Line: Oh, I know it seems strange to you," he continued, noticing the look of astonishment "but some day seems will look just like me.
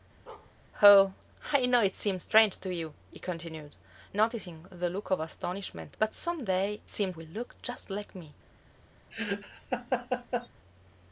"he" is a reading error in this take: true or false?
false